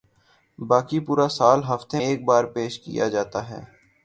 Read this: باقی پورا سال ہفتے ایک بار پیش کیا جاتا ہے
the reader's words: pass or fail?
pass